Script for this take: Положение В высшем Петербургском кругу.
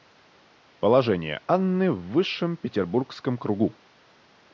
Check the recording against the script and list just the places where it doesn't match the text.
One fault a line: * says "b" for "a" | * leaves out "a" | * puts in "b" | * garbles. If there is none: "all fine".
* puts in "Анны"